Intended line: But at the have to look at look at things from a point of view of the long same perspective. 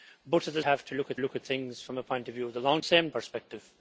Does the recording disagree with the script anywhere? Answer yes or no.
no